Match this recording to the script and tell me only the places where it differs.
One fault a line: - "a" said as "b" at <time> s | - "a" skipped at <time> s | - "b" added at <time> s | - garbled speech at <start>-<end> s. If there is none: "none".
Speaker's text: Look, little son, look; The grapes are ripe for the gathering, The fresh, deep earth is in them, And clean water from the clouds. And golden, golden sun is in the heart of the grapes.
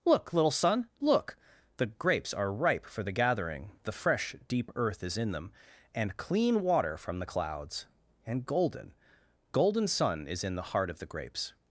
none